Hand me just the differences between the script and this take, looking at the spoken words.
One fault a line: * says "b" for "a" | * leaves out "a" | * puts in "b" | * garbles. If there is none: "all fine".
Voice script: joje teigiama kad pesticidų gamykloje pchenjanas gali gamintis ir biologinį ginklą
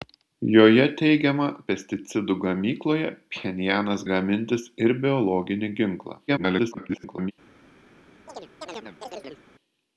* leaves out "kad"
* leaves out "gali"
* garbles